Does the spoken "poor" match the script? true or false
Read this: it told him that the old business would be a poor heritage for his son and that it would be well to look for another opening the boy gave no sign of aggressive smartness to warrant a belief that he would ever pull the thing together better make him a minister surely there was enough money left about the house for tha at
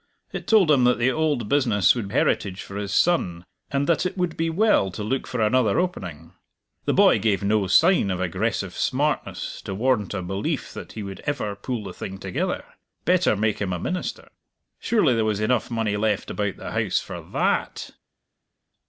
false